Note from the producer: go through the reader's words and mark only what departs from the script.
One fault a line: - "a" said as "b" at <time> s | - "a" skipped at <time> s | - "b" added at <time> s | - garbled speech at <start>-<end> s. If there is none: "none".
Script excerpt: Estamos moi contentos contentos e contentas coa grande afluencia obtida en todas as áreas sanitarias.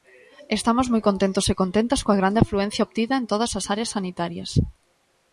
- "contentos" skipped at 1.4 s